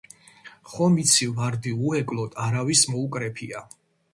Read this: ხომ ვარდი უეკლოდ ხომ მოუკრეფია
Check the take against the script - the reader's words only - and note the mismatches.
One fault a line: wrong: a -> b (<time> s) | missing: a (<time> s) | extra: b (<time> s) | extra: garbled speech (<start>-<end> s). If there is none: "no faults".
extra: იცი (1.0 s)
wrong: ხომ -> არავის (2.5 s)